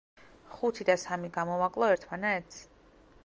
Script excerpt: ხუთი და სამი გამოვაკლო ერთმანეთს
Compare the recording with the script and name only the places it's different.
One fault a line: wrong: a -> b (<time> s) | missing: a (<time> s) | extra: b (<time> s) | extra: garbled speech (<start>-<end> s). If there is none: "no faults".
no faults